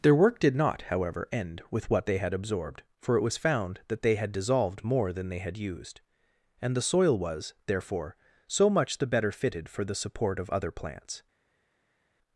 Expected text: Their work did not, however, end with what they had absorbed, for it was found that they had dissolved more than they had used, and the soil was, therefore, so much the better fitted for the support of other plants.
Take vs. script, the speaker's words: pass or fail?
pass